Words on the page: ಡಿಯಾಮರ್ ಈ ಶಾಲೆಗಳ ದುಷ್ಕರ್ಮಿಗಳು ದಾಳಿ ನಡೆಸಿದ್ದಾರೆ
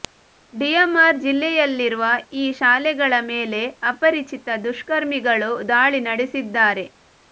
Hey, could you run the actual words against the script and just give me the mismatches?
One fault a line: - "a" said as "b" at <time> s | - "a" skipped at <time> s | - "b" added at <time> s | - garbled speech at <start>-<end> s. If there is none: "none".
- "ಜಿಲ್ಲೆಯಲ್ಲಿರುವ" added at 1.2 s
- "ಮೇಲೆ ಅಪರಿಚಿತ" added at 3.3 s